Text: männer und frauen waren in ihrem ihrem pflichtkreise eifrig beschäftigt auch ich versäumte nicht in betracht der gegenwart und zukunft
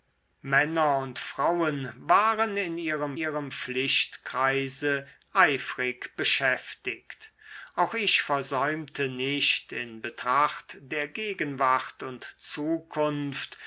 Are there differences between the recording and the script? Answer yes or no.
no